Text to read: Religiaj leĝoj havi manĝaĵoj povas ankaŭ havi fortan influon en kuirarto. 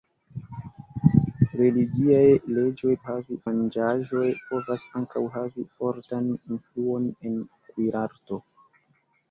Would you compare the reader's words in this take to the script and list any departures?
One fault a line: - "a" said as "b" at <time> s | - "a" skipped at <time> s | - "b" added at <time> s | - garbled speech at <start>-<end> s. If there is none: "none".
none